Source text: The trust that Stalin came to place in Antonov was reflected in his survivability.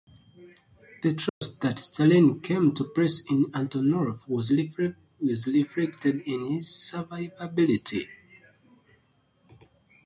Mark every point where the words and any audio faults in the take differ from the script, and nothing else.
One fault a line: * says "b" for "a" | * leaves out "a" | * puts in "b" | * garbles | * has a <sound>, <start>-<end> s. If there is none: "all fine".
* has a dropout, 1.3-1.4 s